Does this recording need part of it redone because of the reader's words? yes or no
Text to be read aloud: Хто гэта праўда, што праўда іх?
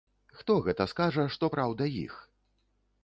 yes